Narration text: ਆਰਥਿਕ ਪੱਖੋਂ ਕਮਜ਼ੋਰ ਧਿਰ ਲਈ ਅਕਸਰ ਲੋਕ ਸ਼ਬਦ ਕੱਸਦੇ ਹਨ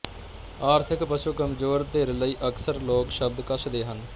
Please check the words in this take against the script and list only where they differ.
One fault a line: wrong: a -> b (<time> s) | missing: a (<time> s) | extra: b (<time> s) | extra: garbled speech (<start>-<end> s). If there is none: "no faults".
no faults